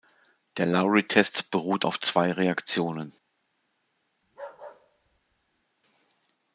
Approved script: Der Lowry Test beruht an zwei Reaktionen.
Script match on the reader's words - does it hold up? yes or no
no